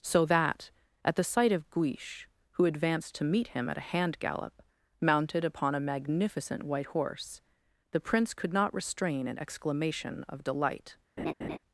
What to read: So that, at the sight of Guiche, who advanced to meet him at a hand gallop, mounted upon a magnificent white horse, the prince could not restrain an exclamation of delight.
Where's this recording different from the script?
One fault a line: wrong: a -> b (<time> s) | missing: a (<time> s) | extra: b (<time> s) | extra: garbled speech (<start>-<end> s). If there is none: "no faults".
no faults